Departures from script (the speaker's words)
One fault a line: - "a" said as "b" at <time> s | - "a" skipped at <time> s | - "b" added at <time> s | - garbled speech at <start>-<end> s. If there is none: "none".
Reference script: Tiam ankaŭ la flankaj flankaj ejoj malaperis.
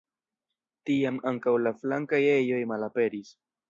- "flankaj" skipped at 2.2 s